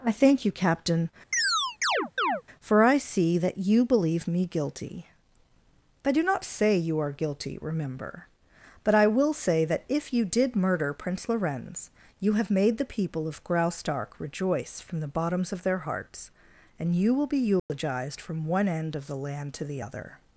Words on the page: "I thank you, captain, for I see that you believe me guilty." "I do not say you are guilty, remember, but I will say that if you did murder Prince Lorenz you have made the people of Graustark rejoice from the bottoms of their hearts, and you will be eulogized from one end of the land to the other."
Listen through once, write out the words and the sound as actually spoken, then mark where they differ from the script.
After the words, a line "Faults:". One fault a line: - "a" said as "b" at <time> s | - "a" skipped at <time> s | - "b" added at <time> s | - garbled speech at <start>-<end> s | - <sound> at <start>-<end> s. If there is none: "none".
"I thank you, captain, for I see that you believe me guilty." "I do not say you are guilty, remember, but I will say that if you did murder Prince Lorenz you have made the people of Graustark rejoice from the bottoms of their hearts, and you will be eulogized from one end of the land to the other."
Faults:
- chirp at 1.3-2.4 s
- dropout at 17.6-17.7 s